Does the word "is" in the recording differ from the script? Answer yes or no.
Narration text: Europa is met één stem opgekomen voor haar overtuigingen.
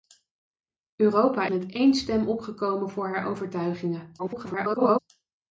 yes